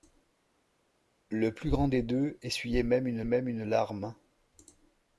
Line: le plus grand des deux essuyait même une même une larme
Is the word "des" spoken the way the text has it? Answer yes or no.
yes